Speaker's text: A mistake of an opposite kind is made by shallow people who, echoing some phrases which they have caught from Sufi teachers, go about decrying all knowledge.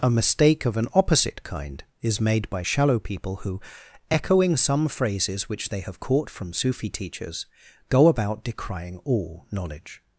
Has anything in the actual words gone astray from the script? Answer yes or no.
no